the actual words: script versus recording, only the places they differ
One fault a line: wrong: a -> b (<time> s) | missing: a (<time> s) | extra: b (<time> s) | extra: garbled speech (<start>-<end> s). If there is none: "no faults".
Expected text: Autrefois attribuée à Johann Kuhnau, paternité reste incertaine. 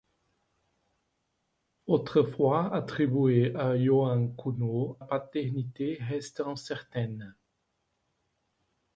no faults